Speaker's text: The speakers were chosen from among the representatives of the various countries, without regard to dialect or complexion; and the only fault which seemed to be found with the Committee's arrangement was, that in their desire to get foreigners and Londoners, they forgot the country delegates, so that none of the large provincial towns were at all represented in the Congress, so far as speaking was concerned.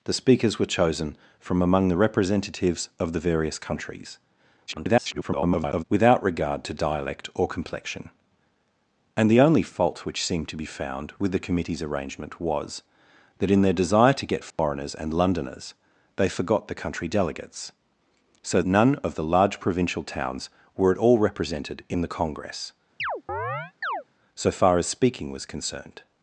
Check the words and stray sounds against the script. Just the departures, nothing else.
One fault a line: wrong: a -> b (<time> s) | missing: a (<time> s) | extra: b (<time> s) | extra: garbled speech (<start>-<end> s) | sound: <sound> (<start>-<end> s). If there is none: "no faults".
extra: garbled speech (4.7-5.8 s)
sound: dropout (14.5-14.6 s)
missing: that (18.6 s)
sound: chirp (23.0-24.0 s)